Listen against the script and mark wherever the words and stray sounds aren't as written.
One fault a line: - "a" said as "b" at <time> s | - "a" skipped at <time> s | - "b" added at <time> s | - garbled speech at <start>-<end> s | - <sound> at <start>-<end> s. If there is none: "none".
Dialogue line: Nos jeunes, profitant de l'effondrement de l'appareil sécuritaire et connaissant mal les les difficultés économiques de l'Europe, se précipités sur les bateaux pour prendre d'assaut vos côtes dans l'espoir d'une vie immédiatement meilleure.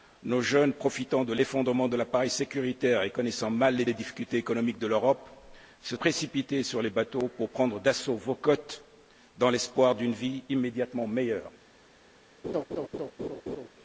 - laugh at 12.4-13.7 s